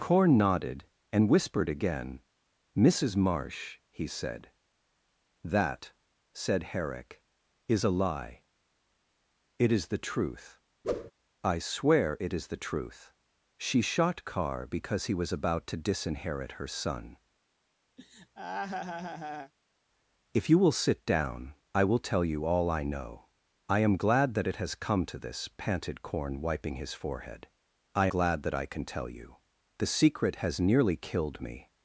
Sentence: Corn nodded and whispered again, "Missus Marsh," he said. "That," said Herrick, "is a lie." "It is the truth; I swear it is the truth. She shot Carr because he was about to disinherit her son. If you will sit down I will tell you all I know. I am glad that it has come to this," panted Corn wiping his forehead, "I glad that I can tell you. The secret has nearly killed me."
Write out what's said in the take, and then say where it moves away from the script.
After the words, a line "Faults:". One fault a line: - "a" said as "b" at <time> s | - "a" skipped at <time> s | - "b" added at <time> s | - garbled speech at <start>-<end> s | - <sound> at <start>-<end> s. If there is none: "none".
Corn nodded and whispered again, "Missus Marsh," he said. "That," said Herrick, "is a lie." "It is the truth; I swear it is the truth. She shot Carr because he was about to disinherit her son. If you will sit down I will tell you all I know. I am glad that it has come to this," panted Corn wiping his forehead, "I glad that I can tell you. The secret has nearly killed me."
Faults:
- whoosh at 10.8-11.1 s
- laugh at 18.0-19.5 s